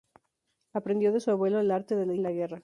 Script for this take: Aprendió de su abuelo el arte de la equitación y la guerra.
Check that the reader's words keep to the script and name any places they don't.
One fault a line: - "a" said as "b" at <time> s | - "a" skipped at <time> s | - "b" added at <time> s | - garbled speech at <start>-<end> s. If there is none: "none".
- "equitación" skipped at 2.1 s